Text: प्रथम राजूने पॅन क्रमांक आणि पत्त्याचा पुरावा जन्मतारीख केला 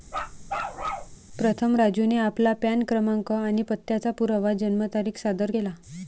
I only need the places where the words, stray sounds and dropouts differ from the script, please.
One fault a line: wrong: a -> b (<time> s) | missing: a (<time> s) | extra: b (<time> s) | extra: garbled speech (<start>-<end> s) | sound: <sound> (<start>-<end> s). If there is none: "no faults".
sound: bark (0.1-1.2 s)
extra: आपला (2.2 s)
extra: सादर (5.2 s)